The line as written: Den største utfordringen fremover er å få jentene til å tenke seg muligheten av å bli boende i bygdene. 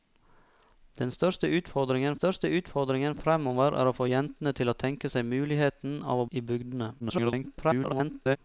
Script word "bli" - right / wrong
wrong